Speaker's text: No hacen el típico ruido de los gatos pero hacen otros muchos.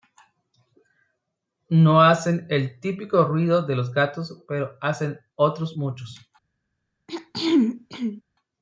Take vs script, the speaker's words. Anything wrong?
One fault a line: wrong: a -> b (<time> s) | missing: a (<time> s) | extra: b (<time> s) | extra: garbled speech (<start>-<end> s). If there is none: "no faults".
no faults